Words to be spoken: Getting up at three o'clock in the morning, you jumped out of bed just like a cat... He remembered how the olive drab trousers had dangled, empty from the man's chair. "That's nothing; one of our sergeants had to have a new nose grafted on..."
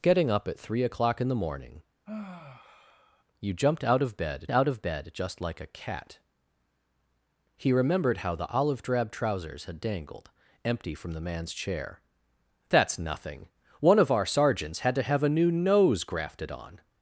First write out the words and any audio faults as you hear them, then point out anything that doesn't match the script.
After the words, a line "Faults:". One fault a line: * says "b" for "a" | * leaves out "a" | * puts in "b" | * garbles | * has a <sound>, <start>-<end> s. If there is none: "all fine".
Getting up at three o'clock in the morning, you jumped out of bed out of bed just like a cat... He remembered how the olive drab trousers had dangled, empty from the man's chair. "That's nothing; one of our sergeants had to have a new nose grafted on..."
Faults:
* has a sigh, 2.1-3.2 s
* puts in "out of bed"